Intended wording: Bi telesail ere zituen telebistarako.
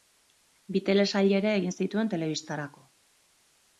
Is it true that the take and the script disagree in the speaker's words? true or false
true